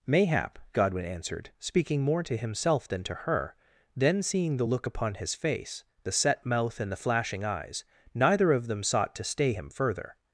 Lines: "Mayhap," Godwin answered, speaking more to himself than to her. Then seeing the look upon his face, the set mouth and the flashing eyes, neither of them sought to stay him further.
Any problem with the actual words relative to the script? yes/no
no